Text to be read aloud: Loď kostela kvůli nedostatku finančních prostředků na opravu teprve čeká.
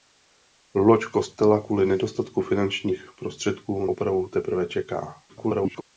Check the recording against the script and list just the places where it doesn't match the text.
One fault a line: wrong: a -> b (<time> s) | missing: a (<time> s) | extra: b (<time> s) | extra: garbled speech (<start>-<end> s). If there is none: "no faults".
missing: na (3.9 s)
extra: garbled speech (5.3-5.8 s)